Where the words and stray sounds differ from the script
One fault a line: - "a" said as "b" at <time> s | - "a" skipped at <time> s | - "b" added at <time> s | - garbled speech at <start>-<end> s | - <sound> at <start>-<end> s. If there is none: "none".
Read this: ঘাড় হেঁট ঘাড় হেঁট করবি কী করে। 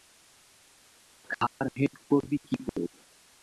- dropout at 1.5-1.6 s
- "ঘাড় হেঁট" skipped at 1.9 s
- dropout at 2.7-2.7 s